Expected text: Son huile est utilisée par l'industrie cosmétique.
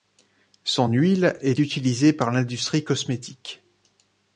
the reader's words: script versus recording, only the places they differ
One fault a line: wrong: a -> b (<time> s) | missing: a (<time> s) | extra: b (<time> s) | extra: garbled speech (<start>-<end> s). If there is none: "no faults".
no faults